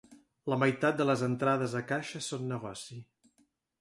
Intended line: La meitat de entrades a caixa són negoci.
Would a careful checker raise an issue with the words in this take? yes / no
yes